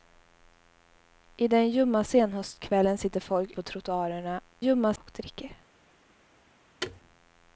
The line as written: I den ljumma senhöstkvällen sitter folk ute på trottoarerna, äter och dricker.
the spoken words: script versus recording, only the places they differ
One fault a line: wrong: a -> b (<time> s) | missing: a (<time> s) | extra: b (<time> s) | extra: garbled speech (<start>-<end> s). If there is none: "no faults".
missing: ute (3.5 s)
wrong: äter -> ljumma (4.6 s)